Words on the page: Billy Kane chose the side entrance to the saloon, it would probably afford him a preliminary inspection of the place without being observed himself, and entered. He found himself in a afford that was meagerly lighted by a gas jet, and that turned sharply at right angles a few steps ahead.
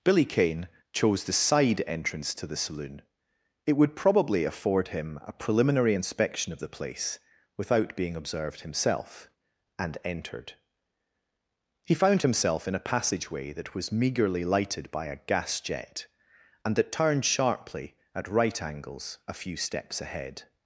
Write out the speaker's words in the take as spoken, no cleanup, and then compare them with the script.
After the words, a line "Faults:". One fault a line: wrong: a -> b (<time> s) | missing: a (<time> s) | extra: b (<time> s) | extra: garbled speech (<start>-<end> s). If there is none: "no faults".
Billy Kane chose the side entrance to the saloon, it would probably afford him a preliminary inspection of the place without being observed himself, and entered. He found himself in a passageway that was meagerly lighted by a gas jet, and that turned sharply at right angles a few steps ahead.
Faults:
wrong: afford -> passageway (12.9 s)